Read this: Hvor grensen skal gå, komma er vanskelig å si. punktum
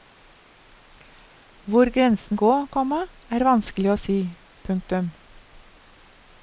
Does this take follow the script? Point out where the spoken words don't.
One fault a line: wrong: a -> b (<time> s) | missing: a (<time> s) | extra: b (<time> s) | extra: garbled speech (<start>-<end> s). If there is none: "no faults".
missing: skal (2.4 s)